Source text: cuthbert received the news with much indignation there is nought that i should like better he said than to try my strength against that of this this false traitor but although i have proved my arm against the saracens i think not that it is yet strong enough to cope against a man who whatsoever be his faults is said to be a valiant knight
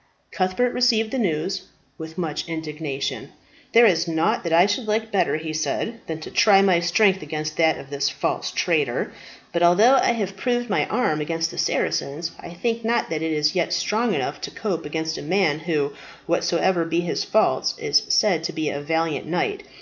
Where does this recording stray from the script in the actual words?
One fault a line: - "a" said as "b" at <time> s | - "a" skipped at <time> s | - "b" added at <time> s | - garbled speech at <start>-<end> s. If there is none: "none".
- "this" skipped at 8.1 s